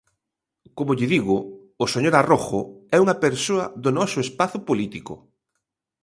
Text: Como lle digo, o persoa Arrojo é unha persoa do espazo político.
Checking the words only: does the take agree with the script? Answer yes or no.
no